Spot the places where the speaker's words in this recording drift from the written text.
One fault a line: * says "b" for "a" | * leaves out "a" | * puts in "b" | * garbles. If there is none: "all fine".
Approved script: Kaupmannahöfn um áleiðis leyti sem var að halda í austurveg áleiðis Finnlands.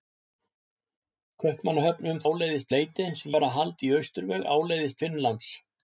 all fine